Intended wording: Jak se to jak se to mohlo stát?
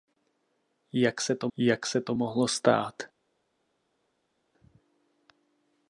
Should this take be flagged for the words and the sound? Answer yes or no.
no